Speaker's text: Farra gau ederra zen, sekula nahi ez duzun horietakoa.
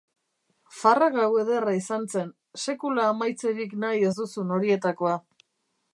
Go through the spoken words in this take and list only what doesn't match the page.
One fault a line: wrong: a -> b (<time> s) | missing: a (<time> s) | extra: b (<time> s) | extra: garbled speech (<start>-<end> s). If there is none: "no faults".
extra: izan (1.8 s)
extra: amaitzerik (3.1 s)